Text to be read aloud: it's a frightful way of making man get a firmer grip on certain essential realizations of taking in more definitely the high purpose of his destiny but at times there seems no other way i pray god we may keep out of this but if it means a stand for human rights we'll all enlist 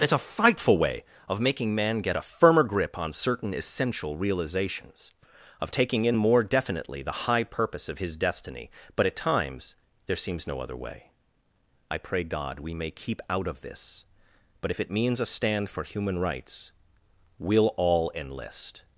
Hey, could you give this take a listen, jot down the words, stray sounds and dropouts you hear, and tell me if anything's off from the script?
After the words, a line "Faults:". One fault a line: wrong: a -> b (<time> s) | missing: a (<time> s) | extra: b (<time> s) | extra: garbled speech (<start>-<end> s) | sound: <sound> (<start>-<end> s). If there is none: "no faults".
it's a frightful way of making man get a firmer grip on certain essential realizations of taking in more definitely the high purpose of his destiny but at times there seems no other way i pray god we may keep out of this but if it means a stand for human rights we'll all enlist
Faults:
no faults